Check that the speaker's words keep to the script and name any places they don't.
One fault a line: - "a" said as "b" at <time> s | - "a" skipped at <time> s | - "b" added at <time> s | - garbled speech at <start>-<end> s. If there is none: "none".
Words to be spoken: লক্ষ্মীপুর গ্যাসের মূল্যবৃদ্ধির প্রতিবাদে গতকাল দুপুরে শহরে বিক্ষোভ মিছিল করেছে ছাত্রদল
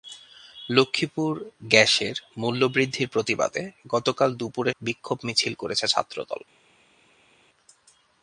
- "শহরে" skipped at 4.7 s